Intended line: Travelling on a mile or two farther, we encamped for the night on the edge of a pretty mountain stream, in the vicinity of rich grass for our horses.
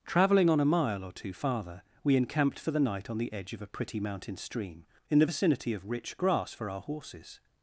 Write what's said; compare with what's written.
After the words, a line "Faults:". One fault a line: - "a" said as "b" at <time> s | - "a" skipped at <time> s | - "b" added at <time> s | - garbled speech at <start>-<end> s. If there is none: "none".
Travelling on a mile or two farther, we encamped for the night on the edge of a pretty mountain stream, in the vicinity of rich grass for our horses.
Faults:
none